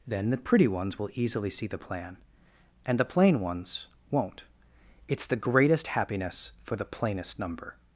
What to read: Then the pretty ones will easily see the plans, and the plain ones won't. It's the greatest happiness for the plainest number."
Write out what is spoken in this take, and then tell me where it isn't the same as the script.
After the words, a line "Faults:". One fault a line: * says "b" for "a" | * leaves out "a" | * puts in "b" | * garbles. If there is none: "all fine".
Then the pretty ones will easily see the plan, and the plain ones won't. It's the greatest happiness for the plainest number."
Faults:
* says "plan" for "plans"